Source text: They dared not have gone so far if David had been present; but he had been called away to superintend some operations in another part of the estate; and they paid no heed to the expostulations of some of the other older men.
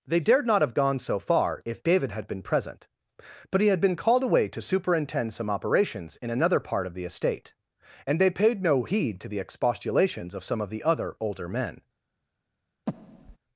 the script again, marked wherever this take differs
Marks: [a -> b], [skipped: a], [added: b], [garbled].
They dared not have gone so far if David had been present; but he had been called away to superintend some operations in another part of the estate; and they paid no heed to the expostulations of some of the other older men.